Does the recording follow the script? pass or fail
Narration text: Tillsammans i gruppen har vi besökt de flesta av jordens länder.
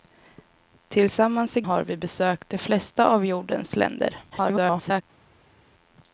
fail